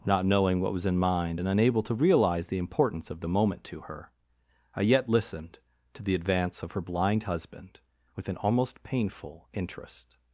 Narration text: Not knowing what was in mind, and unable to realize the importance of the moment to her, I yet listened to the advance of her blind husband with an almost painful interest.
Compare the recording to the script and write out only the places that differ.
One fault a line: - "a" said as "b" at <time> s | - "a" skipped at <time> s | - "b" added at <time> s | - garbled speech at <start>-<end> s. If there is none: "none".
none